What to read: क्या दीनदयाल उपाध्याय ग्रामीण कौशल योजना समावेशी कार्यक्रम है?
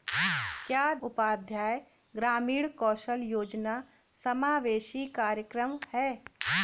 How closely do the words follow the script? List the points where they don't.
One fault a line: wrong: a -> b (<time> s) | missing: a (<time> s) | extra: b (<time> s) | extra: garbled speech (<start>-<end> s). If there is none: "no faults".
missing: दीनदयाल (0.9 s)